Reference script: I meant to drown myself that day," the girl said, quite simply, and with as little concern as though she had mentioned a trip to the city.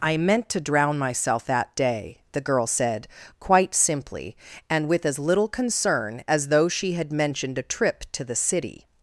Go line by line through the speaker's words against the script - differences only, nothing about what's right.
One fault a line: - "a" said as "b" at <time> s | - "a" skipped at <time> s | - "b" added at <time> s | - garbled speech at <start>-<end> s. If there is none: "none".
none